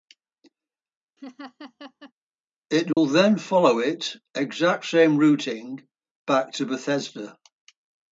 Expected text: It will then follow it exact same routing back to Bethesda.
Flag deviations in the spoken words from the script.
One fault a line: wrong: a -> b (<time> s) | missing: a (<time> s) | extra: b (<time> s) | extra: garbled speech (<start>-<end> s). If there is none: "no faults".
no faults